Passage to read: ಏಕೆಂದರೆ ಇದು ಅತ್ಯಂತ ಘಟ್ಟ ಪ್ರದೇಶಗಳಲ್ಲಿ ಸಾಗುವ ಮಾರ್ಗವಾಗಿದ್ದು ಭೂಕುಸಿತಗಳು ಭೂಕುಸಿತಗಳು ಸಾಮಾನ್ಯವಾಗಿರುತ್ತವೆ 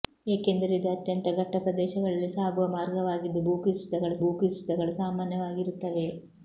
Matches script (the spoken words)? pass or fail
pass